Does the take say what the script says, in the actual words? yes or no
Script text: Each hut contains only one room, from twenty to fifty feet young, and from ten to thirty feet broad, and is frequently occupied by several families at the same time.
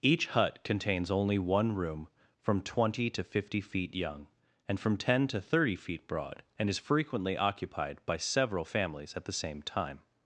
yes